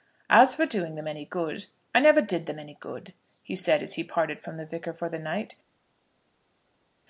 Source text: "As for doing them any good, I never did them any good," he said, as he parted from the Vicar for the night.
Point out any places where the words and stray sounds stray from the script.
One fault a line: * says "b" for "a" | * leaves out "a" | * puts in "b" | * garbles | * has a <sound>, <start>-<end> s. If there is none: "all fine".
all fine